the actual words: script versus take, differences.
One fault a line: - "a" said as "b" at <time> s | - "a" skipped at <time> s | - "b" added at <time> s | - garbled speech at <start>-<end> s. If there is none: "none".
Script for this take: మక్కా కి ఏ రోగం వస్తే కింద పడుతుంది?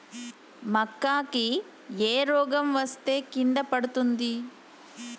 none